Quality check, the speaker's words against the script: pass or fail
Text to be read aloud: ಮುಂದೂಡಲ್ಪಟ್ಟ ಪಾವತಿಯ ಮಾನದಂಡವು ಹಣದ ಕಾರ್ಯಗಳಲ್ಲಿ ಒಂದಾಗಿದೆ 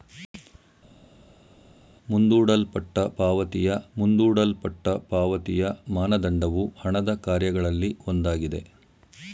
fail